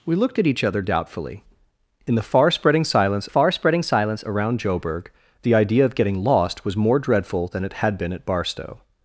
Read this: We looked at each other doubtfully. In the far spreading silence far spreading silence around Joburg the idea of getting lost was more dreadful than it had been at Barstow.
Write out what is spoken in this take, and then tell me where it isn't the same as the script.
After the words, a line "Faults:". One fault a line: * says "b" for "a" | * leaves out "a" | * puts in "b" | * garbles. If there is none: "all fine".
We looked at each other doubtfully. In the far spreading silence far spreading silence around Joburg the idea of getting lost was more dreadful than it had been at Barstow.
Faults:
all fine